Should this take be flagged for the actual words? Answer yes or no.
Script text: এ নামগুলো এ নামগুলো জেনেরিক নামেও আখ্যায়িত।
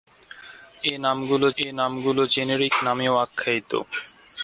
no